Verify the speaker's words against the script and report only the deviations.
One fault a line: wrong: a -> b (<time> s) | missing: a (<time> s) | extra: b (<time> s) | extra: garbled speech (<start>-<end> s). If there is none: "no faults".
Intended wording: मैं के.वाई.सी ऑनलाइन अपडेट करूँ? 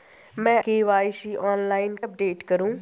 no faults